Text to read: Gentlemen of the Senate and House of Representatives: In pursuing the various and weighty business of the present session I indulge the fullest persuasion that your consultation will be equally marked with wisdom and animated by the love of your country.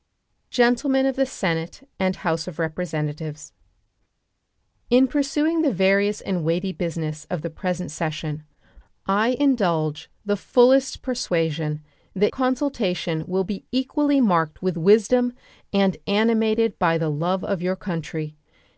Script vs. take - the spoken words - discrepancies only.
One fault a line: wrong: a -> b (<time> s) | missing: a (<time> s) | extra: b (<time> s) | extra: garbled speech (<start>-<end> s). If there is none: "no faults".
missing: your (12.3 s)